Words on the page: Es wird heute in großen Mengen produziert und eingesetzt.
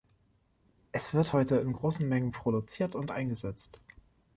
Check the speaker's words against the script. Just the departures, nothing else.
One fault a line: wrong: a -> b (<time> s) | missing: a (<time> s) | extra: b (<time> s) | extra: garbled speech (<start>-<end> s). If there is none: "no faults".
no faults